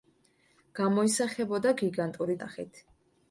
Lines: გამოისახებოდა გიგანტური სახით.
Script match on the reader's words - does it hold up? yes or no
yes